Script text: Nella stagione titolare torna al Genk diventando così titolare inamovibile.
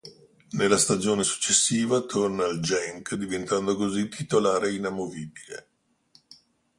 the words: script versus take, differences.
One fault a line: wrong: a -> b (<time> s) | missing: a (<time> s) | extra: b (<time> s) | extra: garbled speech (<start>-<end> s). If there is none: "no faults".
wrong: titolare -> successiva (1.2 s)